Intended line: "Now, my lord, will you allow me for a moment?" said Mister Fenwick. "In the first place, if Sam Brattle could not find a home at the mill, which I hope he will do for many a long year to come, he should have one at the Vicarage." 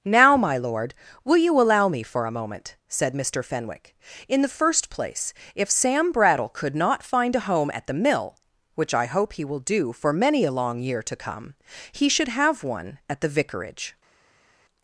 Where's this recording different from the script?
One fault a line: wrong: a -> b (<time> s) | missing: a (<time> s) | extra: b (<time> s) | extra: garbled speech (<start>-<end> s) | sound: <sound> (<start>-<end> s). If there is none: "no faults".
no faults